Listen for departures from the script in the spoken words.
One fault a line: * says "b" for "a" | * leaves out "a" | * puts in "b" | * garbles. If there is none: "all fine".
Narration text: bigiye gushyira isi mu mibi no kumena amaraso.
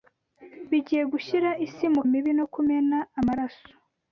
all fine